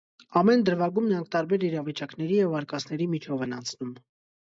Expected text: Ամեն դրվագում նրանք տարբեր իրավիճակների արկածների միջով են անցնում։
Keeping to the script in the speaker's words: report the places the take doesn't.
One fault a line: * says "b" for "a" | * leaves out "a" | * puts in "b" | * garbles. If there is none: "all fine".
* puts in "և"